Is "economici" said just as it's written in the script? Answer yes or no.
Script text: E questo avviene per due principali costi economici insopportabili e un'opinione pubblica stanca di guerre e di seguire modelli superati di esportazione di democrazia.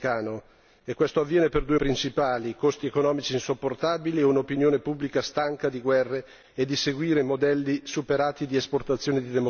yes